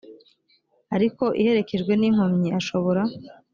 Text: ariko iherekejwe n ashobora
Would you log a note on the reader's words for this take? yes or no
yes